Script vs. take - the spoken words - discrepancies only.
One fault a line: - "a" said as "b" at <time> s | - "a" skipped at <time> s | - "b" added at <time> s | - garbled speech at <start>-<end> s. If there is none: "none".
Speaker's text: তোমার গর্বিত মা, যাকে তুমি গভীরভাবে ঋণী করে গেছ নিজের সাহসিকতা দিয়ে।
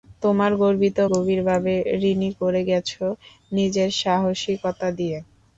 - "মা যাকে তুমি" skipped at 1.0 s